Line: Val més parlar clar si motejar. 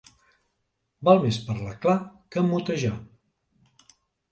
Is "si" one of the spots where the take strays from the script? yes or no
yes